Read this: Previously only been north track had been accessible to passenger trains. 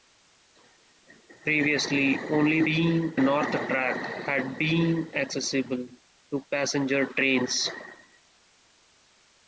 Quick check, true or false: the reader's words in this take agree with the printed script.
true